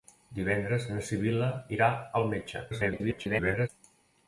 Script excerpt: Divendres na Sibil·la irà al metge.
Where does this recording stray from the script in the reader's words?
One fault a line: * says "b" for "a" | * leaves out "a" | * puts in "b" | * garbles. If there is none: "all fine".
* garbles